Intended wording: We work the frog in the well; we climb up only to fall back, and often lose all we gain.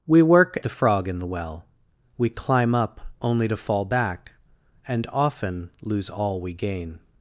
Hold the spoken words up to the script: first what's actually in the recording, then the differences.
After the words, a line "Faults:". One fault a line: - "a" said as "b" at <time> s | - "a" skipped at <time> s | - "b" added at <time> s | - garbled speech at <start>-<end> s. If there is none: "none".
We work the frog in the well; we climb up only to fall back, and often lose all we gain.
Faults:
none